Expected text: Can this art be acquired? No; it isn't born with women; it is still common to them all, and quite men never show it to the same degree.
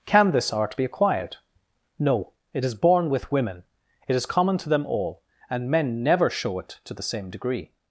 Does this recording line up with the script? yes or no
no